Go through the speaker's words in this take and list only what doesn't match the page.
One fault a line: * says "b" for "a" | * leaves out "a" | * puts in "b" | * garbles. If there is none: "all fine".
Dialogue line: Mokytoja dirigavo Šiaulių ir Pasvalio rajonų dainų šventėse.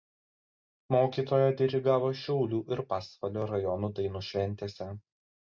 all fine